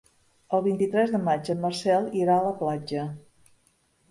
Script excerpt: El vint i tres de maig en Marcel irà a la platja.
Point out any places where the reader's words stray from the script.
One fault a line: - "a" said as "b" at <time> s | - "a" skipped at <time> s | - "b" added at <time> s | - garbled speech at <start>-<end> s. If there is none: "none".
none